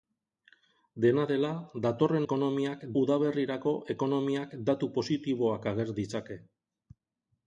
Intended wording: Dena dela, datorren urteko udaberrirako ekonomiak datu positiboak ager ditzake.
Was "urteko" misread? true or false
true